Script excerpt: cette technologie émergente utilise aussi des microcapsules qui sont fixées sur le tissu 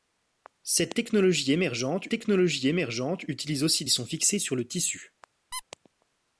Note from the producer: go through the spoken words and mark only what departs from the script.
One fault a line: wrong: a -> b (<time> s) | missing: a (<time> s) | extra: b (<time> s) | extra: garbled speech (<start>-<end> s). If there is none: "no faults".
extra: technologie émergente (2.1 s)
missing: des microcapsules qui (3.8 s)